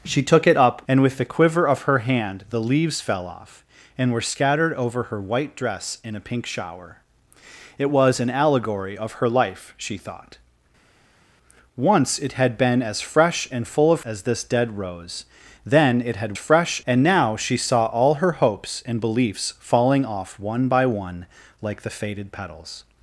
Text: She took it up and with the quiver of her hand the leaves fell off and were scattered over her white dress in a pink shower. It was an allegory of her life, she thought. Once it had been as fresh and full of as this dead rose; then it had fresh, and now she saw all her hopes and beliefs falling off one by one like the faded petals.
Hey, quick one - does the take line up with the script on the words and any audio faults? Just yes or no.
yes